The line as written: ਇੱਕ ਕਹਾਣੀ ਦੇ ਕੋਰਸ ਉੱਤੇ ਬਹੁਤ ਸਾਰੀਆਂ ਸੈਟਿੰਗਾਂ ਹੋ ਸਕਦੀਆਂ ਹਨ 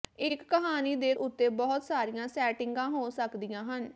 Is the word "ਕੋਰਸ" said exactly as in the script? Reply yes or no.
no